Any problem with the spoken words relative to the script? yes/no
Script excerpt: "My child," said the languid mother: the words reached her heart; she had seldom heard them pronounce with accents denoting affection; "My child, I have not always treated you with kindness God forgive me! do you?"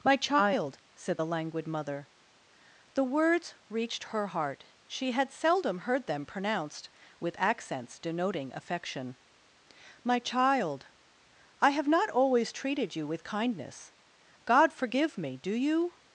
yes